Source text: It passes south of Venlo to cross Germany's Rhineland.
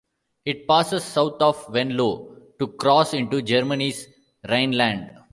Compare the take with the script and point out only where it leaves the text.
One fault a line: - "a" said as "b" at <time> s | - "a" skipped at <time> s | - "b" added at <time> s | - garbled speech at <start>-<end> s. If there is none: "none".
- "into" added at 3.1 s